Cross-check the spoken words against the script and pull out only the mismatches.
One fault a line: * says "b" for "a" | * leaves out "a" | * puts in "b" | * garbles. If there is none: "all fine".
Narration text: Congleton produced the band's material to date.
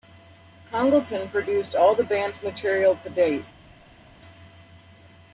* puts in "all"